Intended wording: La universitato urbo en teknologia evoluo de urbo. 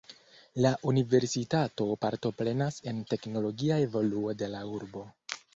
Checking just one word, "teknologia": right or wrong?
right